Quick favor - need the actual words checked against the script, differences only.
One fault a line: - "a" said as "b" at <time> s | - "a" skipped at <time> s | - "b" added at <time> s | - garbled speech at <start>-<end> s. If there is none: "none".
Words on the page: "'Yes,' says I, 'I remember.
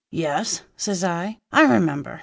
none